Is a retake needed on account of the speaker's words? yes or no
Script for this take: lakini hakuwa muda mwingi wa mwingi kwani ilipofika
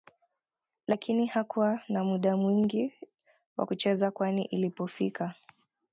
yes